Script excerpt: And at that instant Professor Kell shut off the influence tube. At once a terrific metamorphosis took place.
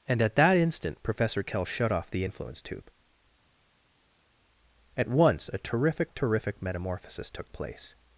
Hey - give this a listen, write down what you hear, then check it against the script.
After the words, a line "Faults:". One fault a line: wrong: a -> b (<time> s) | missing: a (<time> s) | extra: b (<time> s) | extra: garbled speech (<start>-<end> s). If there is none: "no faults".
And at that instant Professor Kell shut off the influence tube. At once a terrific terrific metamorphosis took place.
Faults:
extra: terrific (6.1 s)